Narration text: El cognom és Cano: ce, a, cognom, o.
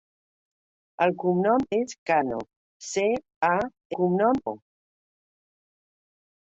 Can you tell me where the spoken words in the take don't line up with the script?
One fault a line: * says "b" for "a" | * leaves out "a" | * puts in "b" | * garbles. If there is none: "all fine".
all fine